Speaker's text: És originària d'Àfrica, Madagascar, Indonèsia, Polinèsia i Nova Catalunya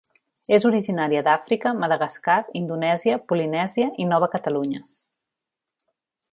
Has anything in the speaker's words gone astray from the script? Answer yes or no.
no